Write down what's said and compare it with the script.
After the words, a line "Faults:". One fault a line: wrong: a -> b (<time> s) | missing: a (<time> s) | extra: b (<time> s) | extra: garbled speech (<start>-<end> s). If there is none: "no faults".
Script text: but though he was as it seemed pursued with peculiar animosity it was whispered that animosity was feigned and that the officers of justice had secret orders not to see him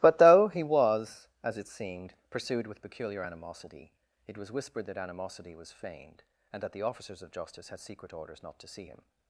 but though he was as it seemed pursued with peculiar animosity it was whispered that animosity was feigned and that the officers of justice had secret orders not to see him
Faults:
no faults